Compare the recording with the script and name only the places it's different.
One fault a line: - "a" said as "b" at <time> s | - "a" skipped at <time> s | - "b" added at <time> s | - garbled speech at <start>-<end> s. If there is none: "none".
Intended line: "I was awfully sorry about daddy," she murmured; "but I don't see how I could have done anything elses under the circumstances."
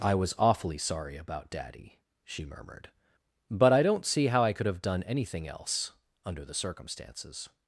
- "elses" said as "else" at 5.5 s